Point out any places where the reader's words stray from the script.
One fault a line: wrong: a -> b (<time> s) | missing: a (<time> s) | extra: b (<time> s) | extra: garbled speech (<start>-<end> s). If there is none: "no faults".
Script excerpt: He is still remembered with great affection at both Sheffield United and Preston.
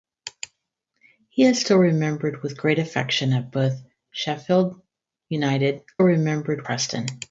wrong: and -> remembered (6.0 s)